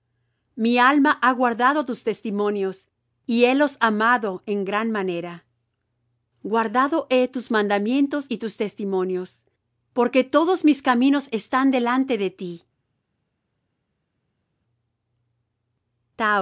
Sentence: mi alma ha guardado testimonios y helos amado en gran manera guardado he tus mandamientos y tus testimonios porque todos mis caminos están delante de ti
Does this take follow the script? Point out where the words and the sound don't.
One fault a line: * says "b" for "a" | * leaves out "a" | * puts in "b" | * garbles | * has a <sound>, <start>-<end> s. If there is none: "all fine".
* puts in "tus"